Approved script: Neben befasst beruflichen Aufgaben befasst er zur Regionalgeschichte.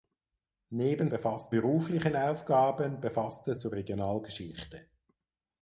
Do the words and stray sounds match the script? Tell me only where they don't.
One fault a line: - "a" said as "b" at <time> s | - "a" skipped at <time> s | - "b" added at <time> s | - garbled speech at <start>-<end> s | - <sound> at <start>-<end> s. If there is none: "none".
none